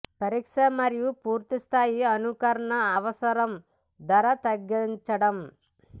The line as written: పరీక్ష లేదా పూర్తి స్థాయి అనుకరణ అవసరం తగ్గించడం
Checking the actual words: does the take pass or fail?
fail